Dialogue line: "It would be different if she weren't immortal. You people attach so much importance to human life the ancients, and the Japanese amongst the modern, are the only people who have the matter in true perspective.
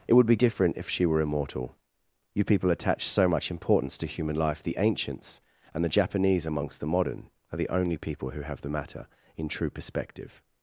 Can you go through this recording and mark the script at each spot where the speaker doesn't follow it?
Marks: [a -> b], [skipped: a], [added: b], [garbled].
"It would be different if she [weren't -> were] immortal. You people attach so much importance to human life the ancients, and the Japanese amongst the modern, are the only people who have the matter in true perspective.